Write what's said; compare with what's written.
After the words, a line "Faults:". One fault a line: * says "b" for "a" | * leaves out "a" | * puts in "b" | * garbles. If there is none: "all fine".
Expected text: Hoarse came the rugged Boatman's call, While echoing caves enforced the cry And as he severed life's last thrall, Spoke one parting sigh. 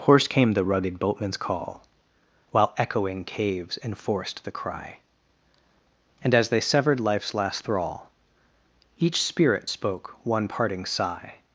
Hoarse came the rugged Boatman's call, While echoing caves enforced the cry And as they severed life's last thrall, Each Spirit spoke one parting sigh.
Faults:
* says "they" for "he"
* puts in "Each Spirit"